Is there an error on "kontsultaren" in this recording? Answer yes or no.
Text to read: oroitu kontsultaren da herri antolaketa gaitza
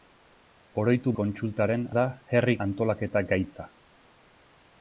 no